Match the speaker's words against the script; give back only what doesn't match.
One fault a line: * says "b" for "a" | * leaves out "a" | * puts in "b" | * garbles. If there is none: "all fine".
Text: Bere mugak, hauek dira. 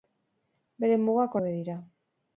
all fine